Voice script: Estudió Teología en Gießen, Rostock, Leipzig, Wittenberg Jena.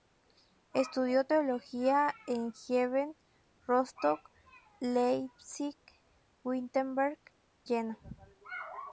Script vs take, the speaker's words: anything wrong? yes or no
no